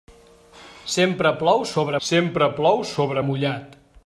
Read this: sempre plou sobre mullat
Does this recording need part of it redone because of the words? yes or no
yes